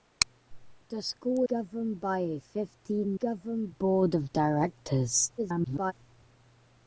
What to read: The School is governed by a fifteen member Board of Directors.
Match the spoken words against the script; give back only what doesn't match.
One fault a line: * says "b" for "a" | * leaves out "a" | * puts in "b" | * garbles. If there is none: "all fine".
* leaves out "is"
* says "governed" for "member"
* garbles